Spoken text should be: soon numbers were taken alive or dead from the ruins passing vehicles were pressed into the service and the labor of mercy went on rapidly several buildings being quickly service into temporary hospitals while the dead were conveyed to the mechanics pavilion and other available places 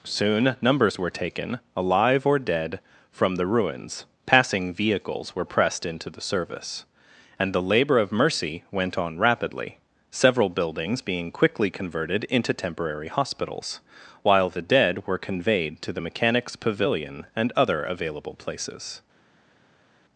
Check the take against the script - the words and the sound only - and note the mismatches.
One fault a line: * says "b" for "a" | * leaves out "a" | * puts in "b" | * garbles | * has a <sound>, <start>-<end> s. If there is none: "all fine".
* says "converted" for "service"